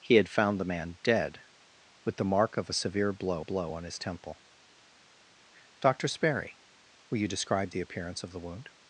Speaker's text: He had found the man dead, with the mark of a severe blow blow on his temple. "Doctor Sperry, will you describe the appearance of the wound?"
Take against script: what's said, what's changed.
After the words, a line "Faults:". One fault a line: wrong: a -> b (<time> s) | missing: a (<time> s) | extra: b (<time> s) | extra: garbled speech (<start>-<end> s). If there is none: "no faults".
He had found the man dead, with the mark of a severe blow blow on his temple. "Doctor Sperry, will you describe the appearance of the wound?"
Faults:
no faults